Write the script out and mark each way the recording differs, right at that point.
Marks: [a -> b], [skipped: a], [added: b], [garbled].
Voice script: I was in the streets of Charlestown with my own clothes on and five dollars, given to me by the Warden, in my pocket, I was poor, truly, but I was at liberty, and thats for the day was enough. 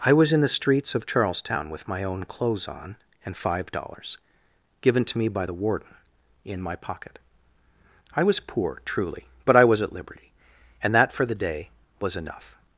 I was in the streets of Charlestown with my own clothes on and five dollars, given to me by the Warden, in my pocket, I was poor, truly, but I was at liberty, and [thats -> that] for the day was enough.